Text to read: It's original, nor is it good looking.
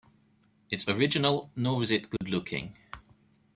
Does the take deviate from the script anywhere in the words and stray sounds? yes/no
yes